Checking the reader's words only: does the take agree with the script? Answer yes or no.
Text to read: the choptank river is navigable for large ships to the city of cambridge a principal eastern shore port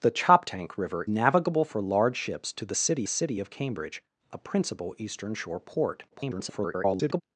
no